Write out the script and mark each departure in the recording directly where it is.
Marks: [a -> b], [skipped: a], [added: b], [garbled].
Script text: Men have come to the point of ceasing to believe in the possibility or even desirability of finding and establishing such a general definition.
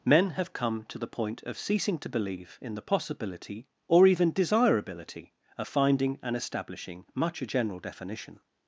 Men have come to the point of ceasing to believe in the possibility or even desirability of finding and establishing [such -> much] a general definition.